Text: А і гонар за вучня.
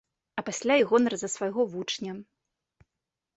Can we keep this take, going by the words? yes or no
no